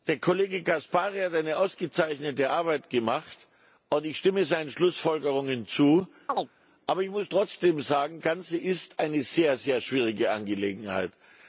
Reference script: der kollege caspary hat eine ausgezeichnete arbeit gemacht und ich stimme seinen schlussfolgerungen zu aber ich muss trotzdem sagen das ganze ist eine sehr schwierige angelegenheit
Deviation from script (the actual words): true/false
true